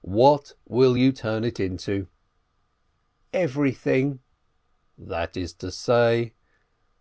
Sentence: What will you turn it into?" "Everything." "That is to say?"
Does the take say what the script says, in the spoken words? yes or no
yes